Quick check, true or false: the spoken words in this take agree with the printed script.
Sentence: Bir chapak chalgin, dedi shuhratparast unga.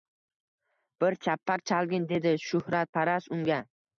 true